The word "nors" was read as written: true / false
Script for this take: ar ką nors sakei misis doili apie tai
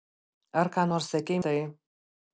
true